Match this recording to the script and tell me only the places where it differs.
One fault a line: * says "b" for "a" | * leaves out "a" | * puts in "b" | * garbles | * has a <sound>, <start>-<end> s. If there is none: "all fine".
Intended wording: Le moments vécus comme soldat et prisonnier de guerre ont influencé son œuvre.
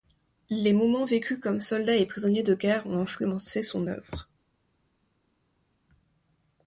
* says "Les" for "Le"